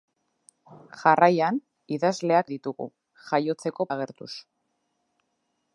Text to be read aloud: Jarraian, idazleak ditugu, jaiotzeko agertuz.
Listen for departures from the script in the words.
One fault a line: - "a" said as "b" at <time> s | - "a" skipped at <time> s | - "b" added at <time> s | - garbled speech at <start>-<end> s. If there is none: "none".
none